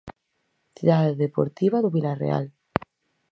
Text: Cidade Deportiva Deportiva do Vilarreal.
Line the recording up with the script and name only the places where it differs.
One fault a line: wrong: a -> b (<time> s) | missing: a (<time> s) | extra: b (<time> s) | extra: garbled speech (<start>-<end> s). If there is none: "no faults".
missing: Deportiva (1.8 s)